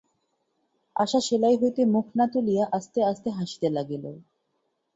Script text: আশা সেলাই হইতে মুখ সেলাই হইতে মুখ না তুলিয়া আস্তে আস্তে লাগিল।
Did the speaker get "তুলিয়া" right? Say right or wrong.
right